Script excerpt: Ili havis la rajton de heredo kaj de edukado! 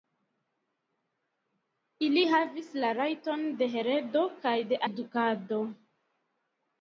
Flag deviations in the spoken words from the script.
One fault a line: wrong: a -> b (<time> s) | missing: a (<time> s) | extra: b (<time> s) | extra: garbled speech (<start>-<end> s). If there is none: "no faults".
no faults